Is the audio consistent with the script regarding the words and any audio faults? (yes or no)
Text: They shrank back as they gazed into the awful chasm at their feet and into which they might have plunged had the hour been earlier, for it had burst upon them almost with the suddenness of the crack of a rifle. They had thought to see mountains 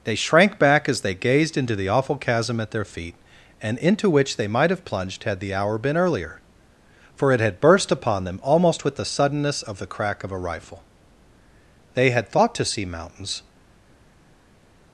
yes